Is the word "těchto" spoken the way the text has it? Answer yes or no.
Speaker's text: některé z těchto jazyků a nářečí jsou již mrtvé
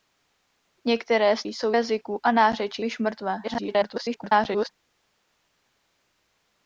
no